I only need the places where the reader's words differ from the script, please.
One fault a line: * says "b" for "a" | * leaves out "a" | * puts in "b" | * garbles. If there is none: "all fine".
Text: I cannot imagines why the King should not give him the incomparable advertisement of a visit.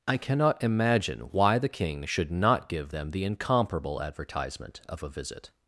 * says "imagine" for "imagines"
* says "them" for "him"